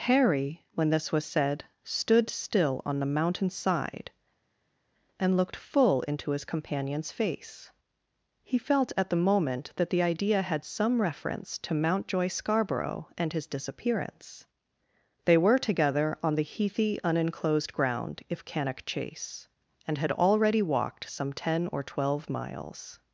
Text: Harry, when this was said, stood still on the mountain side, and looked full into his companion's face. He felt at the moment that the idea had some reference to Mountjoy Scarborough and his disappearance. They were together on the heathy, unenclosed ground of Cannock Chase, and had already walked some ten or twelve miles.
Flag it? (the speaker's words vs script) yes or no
yes